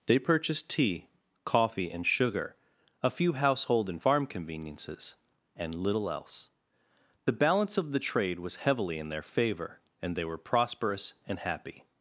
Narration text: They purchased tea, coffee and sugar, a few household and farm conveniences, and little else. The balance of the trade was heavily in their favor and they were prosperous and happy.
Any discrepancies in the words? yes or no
no